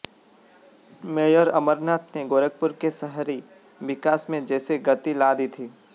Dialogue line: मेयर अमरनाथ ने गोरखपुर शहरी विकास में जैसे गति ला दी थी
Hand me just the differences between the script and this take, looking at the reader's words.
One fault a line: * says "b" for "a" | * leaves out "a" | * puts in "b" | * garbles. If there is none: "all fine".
* puts in "के"